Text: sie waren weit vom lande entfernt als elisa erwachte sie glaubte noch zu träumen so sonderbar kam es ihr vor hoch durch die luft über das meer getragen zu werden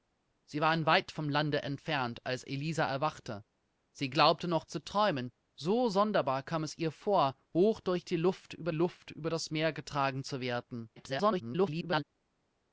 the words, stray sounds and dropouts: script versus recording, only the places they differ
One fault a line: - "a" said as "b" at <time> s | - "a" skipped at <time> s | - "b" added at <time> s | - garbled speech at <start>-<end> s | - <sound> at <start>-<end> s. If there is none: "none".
- "luft über" added at 8.7 s
- garbled speech at 11.0-12.0 s